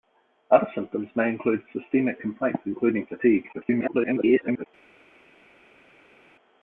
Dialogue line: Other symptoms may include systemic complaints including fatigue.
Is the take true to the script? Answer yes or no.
no